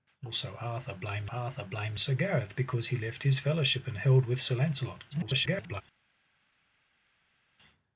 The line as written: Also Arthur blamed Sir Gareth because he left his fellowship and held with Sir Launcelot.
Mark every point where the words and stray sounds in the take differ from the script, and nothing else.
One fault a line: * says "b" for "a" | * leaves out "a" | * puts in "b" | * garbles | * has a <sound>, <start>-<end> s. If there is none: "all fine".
* puts in "Arthur blamed"
* garbles